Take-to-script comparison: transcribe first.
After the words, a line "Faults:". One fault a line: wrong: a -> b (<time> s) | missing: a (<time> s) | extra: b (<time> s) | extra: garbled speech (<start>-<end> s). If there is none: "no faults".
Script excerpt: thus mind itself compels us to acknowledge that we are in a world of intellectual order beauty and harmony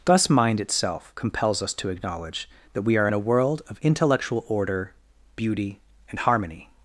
thus mind itself compels us to acknowledge that we are in a world of intellectual order beauty and harmony
Faults:
no faults